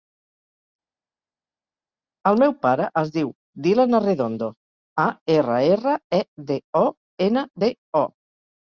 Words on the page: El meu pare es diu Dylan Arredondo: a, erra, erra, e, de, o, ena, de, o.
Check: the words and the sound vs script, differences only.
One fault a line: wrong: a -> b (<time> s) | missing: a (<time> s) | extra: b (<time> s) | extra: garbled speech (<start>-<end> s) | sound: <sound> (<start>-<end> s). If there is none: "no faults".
no faults